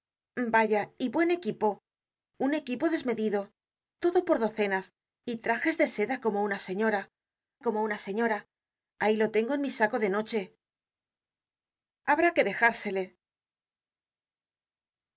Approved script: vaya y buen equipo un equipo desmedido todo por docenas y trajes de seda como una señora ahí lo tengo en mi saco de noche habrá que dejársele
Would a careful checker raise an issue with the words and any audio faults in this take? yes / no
yes